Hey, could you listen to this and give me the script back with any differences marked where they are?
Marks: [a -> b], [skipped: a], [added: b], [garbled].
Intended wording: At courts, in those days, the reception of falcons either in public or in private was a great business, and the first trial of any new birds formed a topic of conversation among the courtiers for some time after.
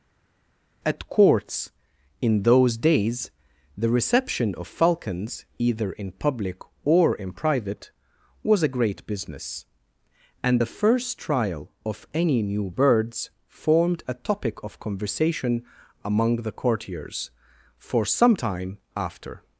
At courts, in those days, the reception of falcons either in public or in private was a great business, and the first trial of any new birds formed a topic of conversation among the courtiers for some time after.